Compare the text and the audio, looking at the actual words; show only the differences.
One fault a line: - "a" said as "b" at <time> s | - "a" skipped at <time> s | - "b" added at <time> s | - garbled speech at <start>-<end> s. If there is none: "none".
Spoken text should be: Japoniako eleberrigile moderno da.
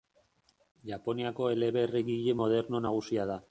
- "nagusia" added at 2.9 s